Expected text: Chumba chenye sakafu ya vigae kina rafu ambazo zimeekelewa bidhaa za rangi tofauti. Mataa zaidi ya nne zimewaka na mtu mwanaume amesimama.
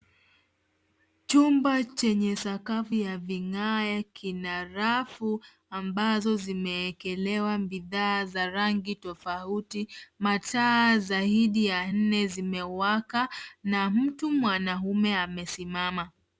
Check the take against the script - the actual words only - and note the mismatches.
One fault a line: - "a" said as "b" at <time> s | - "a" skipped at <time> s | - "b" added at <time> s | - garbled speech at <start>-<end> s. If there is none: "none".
none